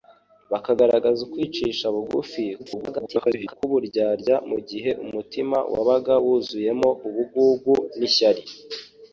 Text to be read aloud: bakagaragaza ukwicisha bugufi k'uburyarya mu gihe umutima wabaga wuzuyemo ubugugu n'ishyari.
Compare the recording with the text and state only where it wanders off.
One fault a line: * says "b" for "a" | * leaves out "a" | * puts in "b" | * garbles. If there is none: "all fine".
* garbles